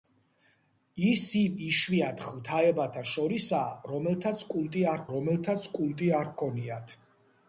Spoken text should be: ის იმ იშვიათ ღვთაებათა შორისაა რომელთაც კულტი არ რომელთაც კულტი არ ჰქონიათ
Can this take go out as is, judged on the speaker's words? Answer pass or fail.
pass